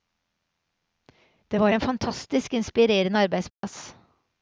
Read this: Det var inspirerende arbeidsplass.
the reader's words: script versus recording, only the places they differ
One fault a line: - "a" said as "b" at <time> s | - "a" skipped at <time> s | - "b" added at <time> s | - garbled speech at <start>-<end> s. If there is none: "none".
- "en fantastisk" added at 1.7 s